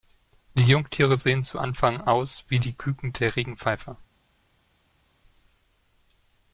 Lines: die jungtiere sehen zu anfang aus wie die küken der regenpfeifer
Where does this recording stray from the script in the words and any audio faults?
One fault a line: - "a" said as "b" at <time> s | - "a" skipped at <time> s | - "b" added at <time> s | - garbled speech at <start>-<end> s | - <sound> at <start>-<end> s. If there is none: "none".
none